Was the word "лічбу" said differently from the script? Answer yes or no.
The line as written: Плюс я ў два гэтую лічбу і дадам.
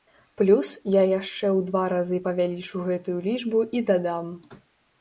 no